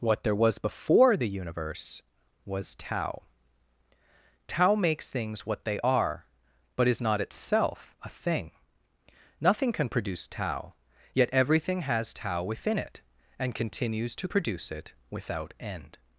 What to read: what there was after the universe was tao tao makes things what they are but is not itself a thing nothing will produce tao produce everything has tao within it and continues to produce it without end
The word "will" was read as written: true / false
false